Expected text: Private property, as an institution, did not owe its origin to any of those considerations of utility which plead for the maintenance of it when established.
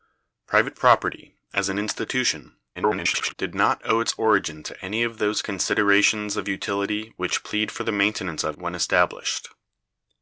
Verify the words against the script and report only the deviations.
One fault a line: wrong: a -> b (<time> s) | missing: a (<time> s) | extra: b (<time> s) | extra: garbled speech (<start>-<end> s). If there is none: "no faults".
extra: garbled speech (2.7-3.3 s)
missing: it (8.6 s)